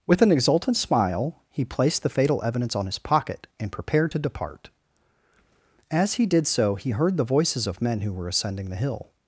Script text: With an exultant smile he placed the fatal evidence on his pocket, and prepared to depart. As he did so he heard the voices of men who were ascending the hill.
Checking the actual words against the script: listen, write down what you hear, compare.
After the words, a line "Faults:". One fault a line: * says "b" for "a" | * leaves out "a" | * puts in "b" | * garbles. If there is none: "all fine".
With an exultant smile he placed the fatal evidence on his pocket, and prepared to depart. As he did so he heard the voices of men who were ascending the hill.
Faults:
all fine